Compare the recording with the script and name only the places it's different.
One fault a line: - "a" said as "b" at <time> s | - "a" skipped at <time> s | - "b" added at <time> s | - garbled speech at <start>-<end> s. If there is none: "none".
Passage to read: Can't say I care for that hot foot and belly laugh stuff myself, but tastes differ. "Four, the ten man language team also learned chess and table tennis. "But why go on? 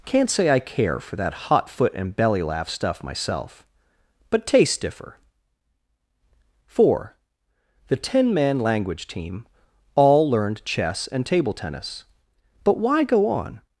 - "also" said as "all" at 9.9 s